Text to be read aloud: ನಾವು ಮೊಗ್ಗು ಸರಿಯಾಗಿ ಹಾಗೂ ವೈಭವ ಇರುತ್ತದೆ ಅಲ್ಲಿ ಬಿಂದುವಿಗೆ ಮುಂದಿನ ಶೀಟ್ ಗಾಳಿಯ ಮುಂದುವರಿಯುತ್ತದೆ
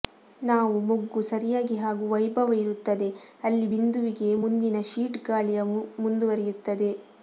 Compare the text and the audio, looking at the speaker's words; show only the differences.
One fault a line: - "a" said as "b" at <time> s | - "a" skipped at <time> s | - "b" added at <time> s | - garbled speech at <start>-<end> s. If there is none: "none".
none